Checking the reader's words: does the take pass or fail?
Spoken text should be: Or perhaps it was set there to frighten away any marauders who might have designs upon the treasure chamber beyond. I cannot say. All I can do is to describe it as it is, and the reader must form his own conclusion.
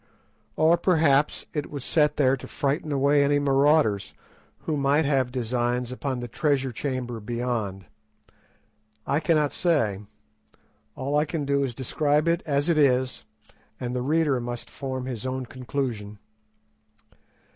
pass